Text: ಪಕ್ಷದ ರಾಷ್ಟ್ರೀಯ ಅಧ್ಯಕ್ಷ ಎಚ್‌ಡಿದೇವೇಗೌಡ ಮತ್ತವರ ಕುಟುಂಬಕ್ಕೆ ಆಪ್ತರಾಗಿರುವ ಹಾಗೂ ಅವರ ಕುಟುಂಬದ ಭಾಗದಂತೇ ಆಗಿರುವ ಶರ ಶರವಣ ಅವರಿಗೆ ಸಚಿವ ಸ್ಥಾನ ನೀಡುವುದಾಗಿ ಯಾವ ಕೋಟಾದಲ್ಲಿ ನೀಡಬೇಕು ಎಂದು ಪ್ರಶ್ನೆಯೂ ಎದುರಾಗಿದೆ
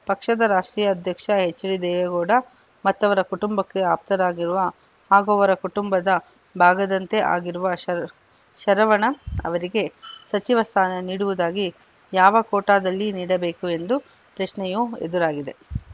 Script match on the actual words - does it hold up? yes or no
yes